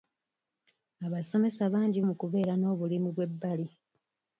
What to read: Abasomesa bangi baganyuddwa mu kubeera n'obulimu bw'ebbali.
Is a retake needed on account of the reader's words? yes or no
yes